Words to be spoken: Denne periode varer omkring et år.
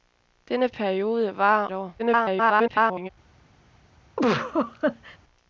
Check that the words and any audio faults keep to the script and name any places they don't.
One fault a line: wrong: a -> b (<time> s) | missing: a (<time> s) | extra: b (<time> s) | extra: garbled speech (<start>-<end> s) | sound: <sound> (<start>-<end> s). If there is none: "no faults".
missing: omkring (1.7 s)
extra: garbled speech (2.0-3.1 s)
sound: laugh (4.2-5.2 s)